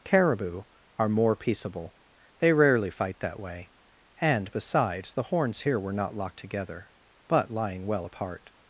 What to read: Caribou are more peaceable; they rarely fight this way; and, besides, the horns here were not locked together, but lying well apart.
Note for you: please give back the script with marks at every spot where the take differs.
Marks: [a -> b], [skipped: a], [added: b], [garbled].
Caribou are more peaceable; they rarely fight [this -> that] way; and, besides, the horns here were not locked together, but lying well apart.